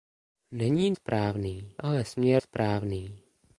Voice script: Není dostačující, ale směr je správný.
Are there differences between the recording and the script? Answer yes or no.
yes